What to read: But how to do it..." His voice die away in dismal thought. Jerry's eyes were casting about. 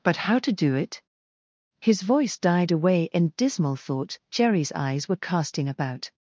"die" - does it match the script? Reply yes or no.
no